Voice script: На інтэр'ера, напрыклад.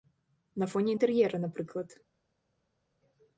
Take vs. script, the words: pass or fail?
fail